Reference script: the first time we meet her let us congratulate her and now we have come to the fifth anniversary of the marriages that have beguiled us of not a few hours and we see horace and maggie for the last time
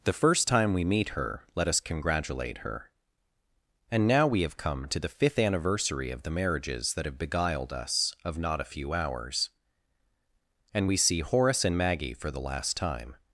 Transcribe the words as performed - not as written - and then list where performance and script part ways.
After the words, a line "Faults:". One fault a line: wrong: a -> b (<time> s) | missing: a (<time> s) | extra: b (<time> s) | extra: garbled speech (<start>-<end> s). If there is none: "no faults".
the first time we meet her let us congratulate her and now we have come to the fifth anniversary of the marriages that have beguiled us of not a few hours and we see horace and maggie for the last time
Faults:
no faults